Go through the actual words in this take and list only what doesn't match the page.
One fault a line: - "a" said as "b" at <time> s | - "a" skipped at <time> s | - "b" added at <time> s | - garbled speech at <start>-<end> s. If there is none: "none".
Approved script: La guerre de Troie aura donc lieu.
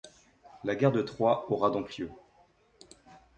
none